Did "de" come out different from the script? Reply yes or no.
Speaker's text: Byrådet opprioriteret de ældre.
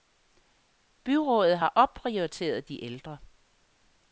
no